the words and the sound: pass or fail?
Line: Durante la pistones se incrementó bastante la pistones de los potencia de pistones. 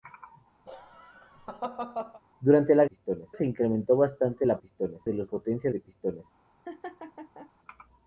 fail